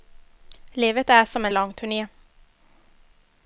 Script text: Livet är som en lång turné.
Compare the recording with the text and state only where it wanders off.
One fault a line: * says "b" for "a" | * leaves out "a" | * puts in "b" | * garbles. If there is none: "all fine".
all fine